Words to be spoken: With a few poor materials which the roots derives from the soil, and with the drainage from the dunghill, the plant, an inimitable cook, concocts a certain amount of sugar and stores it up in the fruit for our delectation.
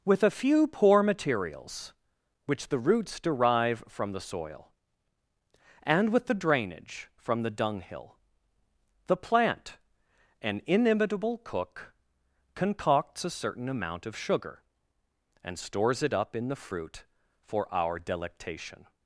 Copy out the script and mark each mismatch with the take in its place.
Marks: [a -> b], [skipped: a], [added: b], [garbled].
With a few poor materials which the roots [derives -> derive] from the soil, and with the drainage from the dunghill, the plant, an inimitable cook, concocts a certain amount of sugar and stores it up in the fruit for our delectation.